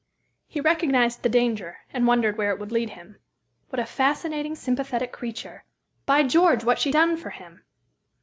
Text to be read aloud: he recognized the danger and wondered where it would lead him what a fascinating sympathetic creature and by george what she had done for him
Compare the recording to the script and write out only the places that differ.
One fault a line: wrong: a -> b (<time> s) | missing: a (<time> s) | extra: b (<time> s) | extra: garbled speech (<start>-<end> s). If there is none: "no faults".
missing: and (5.6 s)
missing: had (6.9 s)